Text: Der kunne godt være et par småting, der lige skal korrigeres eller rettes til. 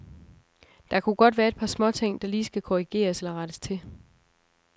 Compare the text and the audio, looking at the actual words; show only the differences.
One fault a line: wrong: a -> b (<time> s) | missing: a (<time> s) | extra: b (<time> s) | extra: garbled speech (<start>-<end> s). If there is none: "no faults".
no faults